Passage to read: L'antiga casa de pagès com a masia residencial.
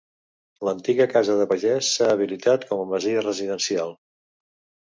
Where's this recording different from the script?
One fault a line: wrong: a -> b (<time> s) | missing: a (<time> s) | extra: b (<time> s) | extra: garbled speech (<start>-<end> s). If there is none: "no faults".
extra: s'ha habilitat (2.0 s)